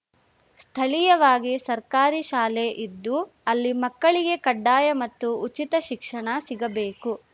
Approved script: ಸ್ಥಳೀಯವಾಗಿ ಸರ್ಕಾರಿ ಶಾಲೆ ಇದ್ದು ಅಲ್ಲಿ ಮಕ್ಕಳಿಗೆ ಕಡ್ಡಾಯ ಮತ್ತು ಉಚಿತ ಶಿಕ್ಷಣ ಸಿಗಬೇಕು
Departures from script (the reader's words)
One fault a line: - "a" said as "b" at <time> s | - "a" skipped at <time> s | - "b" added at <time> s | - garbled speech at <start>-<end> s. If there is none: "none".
none